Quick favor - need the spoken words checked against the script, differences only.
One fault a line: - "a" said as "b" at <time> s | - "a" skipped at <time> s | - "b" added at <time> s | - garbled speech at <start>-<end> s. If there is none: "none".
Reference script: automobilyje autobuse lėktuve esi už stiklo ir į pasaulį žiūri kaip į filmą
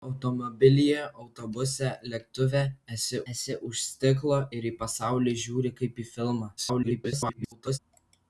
- "esi" added at 3.3 s
- garbled speech at 6.6-7.8 s